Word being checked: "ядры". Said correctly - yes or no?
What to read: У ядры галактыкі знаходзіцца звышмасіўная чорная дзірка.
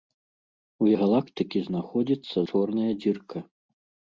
no